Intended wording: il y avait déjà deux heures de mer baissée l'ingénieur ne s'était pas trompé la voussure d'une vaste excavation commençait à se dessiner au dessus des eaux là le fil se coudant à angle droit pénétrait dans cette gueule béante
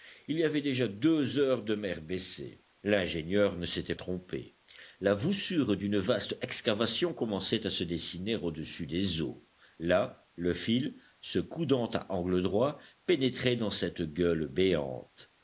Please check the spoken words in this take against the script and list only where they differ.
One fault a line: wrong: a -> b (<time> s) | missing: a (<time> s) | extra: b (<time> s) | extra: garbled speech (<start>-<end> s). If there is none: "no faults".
missing: pas (3.9 s)